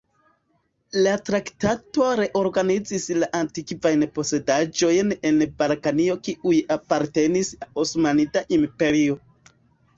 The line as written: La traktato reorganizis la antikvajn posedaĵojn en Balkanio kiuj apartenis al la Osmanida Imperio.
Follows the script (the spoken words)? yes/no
no